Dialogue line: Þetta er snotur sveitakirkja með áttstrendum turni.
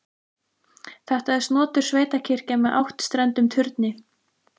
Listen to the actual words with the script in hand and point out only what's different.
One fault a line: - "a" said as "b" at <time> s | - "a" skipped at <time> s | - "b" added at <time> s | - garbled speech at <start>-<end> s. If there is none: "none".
none